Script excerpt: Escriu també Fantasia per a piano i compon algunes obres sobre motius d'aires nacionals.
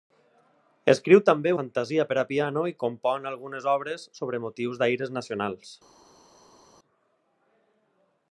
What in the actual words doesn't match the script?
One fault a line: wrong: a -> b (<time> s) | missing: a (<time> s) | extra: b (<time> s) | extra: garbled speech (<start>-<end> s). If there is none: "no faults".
no faults